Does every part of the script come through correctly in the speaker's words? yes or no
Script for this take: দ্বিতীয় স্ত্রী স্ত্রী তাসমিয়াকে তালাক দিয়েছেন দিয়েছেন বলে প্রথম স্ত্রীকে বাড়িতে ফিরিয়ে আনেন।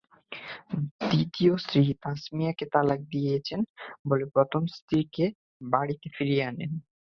no